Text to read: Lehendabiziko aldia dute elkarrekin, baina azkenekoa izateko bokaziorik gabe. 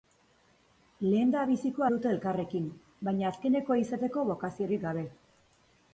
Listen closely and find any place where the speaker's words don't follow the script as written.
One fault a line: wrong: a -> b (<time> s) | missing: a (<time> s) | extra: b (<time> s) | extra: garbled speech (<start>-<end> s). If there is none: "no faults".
missing: aldia (1.9 s)